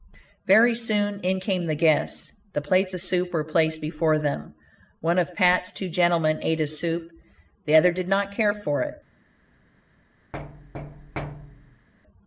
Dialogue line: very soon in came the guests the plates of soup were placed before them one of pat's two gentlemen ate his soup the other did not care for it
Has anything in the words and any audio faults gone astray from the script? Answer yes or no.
yes